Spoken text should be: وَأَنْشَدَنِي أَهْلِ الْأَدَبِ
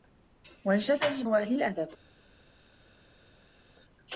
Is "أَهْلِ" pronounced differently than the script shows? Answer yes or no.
no